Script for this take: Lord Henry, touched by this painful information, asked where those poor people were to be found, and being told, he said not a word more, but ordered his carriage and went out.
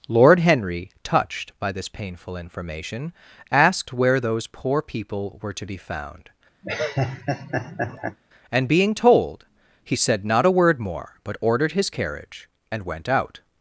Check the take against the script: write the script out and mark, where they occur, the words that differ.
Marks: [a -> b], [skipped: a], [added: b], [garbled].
Lord Henry, touched by this painful information, asked where those poor people were to be found, and being told, he said not a word more, but ordered his carriage and went out.